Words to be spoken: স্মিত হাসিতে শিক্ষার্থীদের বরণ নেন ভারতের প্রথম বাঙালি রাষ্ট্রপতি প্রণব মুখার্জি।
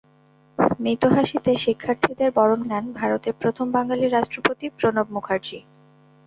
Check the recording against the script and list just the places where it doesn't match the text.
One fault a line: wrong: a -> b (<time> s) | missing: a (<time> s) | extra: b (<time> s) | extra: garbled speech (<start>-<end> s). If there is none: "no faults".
no faults